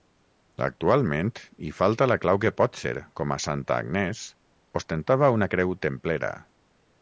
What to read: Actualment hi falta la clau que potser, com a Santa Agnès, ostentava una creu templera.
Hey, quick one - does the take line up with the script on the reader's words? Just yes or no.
yes